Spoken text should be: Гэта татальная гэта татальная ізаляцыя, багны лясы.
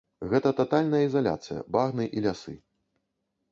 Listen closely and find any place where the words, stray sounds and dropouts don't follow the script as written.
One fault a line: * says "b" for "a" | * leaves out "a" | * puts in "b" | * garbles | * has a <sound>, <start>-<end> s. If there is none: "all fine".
* leaves out "гэта татальная"
* puts in "і"